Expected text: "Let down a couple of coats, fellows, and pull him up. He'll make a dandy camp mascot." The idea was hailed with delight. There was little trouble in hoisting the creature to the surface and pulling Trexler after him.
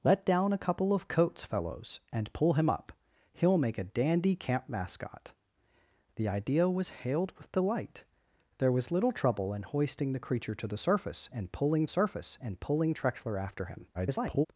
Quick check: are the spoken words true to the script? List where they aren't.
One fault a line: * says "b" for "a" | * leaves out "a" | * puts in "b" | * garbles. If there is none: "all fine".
* puts in "surface and pulling"
* garbles